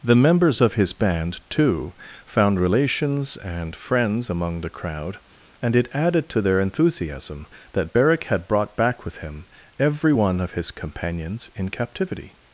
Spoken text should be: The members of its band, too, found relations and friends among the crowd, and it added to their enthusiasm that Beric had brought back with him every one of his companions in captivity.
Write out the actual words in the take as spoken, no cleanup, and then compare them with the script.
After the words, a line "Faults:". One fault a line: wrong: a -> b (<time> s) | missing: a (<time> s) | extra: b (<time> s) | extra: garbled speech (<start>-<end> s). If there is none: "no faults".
The members of his band, too, found relations and friends among the crowd, and it added to their enthusiasm that Beric had brought back with him every one of his companions in captivity.
Faults:
wrong: its -> his (0.7 s)